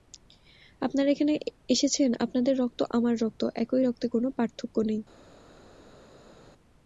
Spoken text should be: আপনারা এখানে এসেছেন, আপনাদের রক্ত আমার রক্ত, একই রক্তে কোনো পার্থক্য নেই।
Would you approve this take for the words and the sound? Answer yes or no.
yes